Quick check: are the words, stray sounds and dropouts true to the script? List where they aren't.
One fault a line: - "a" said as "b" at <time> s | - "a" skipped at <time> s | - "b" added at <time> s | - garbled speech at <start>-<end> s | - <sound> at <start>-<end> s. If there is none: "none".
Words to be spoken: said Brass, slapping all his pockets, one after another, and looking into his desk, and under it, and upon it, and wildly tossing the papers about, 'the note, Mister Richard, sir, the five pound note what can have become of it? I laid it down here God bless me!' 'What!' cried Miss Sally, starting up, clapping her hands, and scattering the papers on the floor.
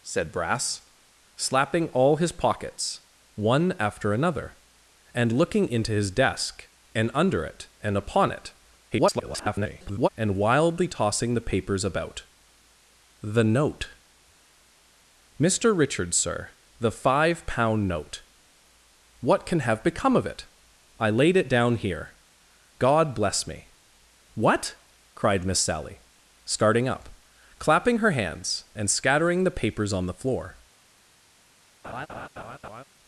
- garbled speech at 8.9-10.1 s
- laugh at 31.8-32.8 s